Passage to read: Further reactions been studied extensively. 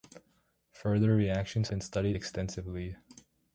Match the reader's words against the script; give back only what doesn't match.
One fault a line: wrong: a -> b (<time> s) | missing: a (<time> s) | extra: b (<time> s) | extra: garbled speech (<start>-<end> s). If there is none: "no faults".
no faults